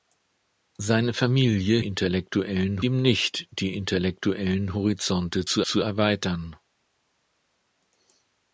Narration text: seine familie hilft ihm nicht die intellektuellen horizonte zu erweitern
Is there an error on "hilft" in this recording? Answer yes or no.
yes